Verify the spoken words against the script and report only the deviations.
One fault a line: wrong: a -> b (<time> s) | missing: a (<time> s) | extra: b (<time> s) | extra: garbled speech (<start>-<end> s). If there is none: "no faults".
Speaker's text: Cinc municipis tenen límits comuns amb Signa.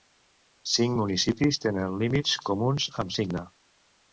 no faults